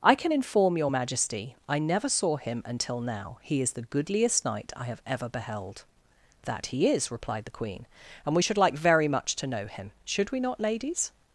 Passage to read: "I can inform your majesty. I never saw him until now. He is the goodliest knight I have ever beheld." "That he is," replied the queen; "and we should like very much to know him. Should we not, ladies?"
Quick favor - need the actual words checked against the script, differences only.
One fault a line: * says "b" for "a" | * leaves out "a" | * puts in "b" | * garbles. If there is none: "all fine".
all fine